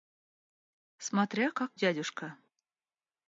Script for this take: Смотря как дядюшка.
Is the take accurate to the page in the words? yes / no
yes